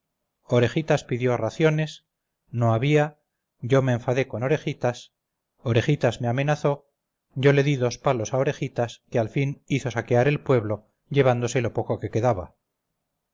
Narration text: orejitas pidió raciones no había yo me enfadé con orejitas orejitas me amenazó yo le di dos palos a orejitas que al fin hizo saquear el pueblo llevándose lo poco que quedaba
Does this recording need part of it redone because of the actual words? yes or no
no